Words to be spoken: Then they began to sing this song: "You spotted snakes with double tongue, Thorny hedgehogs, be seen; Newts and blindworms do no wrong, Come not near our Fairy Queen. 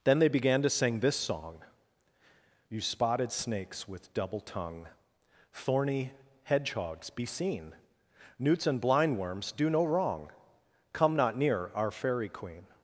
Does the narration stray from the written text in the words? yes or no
no